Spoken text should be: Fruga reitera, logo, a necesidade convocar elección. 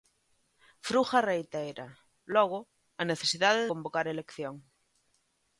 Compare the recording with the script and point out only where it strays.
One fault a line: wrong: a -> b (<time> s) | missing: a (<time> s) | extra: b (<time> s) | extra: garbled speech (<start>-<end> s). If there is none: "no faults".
no faults